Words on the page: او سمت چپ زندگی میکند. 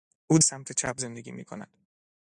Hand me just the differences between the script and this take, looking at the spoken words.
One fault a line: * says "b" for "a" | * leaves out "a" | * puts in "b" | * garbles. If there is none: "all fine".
all fine